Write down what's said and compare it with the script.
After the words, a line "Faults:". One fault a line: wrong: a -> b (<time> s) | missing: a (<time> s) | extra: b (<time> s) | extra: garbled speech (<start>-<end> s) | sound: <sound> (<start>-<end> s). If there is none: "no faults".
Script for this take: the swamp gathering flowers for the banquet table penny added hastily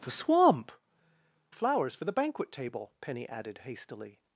the swamp flowers for the banquet table penny added hastily
Faults:
missing: gathering (0.7 s)